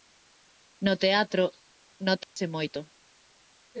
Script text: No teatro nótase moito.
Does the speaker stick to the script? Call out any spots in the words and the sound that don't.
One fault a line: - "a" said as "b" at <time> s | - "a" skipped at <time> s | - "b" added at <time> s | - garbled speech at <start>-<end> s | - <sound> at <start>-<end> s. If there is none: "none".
- dropout at 2.2-2.4 s